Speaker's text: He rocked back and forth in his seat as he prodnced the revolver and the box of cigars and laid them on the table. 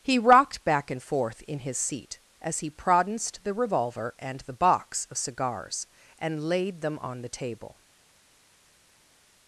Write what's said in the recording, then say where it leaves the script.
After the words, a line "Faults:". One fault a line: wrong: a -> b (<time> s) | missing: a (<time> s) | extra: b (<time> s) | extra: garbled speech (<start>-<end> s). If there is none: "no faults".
He rocked back and forth in his seat as he prodnced the revolver and the box of cigars and laid them on the table.
Faults:
no faults